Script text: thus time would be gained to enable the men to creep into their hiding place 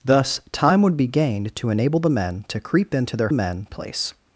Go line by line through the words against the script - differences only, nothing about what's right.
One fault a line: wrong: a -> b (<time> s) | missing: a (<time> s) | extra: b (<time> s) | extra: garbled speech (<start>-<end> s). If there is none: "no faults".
wrong: hiding -> men (3.3 s)